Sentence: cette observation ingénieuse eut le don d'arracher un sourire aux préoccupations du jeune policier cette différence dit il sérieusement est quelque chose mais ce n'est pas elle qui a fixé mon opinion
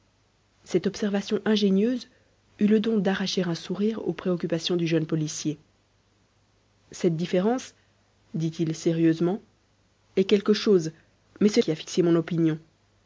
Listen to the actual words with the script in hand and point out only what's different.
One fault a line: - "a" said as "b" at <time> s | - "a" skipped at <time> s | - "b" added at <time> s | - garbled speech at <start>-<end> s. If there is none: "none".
- "n'est pas elle" skipped at 11.6 s